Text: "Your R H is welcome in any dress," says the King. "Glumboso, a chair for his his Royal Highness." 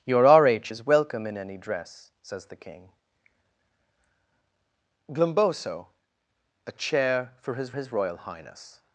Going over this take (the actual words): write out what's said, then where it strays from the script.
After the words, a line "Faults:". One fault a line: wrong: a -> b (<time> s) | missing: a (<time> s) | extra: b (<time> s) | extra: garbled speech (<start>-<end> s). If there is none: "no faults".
"Your R H is welcome in any dress," says the King. "Glumboso, a chair for his his Royal Highness."
Faults:
no faults